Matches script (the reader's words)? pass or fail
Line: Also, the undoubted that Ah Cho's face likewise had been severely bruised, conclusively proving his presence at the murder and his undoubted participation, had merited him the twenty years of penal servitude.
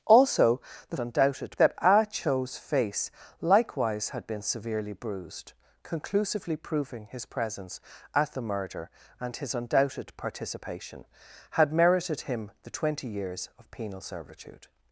pass